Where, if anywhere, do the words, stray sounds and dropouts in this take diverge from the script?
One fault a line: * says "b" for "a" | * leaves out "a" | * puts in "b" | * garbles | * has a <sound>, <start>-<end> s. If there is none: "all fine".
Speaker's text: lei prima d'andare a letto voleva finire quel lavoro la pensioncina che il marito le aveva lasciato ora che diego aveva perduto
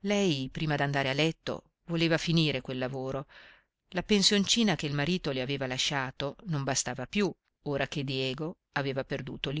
* puts in "non bastava più"